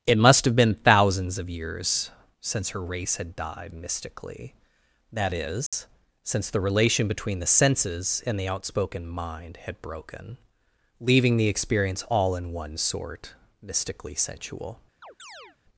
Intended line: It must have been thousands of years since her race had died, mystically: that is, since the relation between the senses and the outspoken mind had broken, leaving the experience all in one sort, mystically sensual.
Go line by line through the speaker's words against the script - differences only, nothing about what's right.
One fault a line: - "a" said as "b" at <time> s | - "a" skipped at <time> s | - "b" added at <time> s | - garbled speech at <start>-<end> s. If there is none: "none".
none